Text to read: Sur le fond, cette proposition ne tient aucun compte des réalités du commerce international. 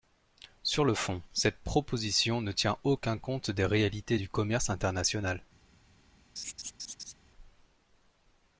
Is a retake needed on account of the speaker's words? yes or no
no